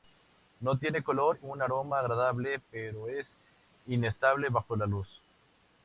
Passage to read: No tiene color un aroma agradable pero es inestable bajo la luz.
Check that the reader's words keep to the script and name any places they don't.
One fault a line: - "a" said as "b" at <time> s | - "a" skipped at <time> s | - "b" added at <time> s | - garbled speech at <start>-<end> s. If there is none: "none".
none